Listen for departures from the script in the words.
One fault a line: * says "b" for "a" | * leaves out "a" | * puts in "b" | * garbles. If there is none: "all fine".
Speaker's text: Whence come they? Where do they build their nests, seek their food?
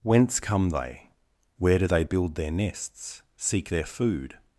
all fine